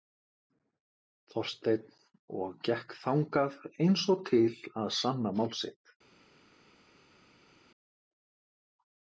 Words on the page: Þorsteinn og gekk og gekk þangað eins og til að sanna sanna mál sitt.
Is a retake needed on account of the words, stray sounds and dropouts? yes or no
yes